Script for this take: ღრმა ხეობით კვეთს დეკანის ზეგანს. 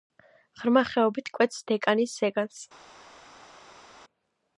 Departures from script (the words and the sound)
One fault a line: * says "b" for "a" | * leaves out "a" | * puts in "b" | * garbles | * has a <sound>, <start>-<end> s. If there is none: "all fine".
all fine